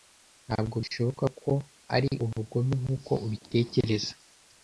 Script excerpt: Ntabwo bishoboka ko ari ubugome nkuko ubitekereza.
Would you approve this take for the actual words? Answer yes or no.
yes